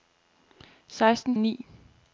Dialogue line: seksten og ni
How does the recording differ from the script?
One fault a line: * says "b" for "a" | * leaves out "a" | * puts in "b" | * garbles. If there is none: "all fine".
all fine